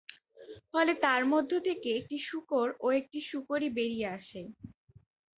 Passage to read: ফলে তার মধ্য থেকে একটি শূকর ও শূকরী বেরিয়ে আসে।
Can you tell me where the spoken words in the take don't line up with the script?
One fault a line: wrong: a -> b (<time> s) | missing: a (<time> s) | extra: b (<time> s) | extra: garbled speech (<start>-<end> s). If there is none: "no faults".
extra: একটি (3.0 s)